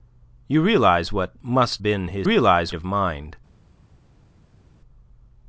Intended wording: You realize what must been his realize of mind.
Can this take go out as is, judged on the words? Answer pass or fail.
pass